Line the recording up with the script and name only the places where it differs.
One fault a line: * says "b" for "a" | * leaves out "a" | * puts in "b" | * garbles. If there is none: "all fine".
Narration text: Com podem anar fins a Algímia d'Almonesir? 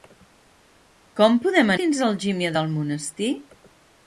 * leaves out "anar"